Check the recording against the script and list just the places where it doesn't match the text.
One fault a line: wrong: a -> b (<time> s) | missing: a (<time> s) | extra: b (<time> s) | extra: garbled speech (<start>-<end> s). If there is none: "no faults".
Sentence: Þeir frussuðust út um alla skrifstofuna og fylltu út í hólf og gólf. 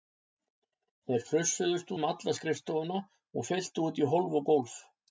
missing: út (1.9 s)